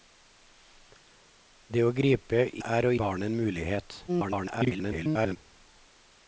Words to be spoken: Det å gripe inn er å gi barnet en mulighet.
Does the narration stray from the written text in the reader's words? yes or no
yes